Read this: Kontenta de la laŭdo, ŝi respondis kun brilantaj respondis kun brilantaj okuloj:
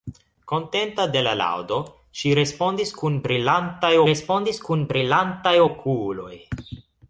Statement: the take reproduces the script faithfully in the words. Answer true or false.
true